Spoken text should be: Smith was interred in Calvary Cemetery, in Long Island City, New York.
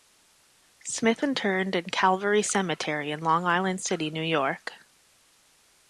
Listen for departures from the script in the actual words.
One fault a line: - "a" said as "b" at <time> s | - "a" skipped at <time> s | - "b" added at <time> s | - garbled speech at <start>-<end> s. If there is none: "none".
- "was" skipped at 1.2 s